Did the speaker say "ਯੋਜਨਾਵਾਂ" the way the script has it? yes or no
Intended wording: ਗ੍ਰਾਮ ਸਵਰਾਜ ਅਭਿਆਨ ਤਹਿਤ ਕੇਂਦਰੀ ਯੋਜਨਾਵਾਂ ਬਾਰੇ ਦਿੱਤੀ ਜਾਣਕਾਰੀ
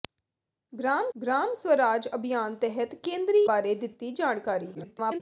no